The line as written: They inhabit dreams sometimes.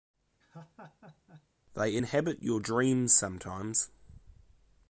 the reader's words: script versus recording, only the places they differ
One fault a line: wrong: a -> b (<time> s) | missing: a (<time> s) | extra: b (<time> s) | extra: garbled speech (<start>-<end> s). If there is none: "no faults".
extra: your (2.4 s)